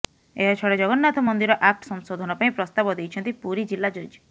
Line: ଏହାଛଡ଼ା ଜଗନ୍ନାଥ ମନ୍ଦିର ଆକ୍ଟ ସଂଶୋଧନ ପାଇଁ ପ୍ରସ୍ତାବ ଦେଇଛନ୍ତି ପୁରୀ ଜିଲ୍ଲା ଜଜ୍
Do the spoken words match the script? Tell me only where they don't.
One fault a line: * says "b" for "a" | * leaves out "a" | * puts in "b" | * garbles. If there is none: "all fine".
all fine